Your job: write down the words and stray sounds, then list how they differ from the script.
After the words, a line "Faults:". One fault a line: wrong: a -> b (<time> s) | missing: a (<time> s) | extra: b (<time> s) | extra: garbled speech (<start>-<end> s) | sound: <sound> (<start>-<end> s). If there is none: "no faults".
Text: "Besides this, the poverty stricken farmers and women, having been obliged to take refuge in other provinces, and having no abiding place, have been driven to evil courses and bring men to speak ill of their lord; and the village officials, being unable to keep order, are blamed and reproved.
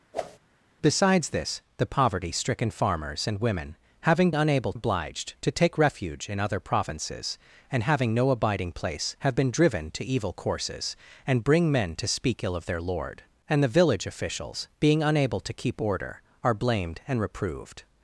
"Besides this, the poverty stricken farmers and women, having unable obliged to take refuge in other provinces, and having no abiding place, have been driven to evil courses and bring men to speak ill of their lord; and the village officials, being unable to keep order, are blamed and reproved.
Faults:
sound: whoosh (0.1-0.4 s)
wrong: been -> unable (4.3 s)